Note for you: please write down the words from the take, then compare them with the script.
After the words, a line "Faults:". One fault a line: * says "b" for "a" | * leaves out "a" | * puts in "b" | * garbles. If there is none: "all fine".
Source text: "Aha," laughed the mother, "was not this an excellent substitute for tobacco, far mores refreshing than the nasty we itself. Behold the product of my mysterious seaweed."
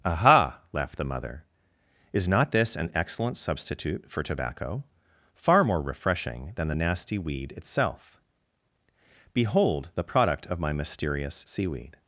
"Aha," laughed the mother, "is not this an excellent substitute for tobacco, far more refreshing than the nasty weed itself. Behold the product of my mysterious seaweed."
Faults:
* says "is" for "was"
* says "more" for "mores"
* says "weed" for "we"